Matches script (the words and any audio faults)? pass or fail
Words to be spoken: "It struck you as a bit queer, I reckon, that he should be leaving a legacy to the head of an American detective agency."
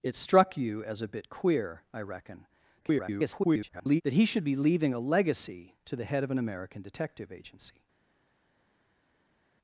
fail